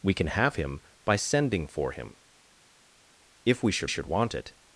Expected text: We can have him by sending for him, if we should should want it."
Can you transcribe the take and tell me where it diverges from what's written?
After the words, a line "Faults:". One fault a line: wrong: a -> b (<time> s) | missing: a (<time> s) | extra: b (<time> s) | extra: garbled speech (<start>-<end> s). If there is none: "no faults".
We can have him by sending for him, if we should should want it."
Faults:
no faults